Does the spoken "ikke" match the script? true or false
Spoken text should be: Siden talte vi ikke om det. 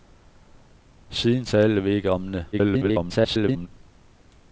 true